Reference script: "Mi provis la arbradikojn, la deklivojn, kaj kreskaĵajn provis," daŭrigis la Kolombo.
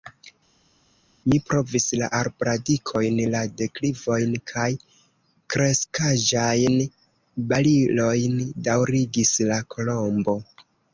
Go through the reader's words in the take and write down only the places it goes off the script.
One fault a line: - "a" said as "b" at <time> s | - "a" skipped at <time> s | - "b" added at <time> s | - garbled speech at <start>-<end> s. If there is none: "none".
- "provis" said as "barilojn" at 7.6 s